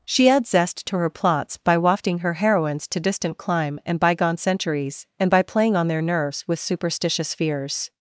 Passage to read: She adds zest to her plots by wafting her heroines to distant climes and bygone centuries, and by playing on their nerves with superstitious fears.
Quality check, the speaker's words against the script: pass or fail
fail